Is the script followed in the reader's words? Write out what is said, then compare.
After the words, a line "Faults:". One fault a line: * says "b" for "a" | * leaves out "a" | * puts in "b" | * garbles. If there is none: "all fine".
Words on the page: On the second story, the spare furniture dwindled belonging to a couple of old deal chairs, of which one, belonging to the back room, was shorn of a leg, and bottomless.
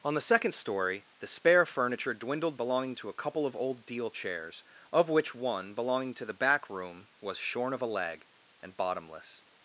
On the second story, the spare furniture dwindled belonging to a couple of old deal chairs, of which one, belonging to the back room, was shorn of a leg, and bottomless.
Faults:
all fine